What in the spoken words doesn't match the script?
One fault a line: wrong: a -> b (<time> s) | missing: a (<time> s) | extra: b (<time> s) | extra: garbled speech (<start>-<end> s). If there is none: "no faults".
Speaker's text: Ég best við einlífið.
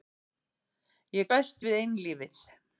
no faults